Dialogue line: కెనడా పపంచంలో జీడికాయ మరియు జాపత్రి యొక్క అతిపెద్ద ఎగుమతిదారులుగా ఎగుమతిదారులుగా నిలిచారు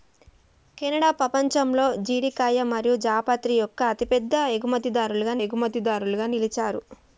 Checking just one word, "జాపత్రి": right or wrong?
right